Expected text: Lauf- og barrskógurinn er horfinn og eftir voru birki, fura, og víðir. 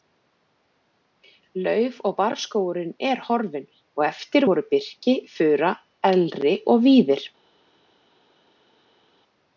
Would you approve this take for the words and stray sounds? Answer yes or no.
no